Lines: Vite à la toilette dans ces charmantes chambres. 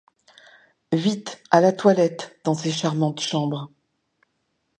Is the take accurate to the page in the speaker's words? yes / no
yes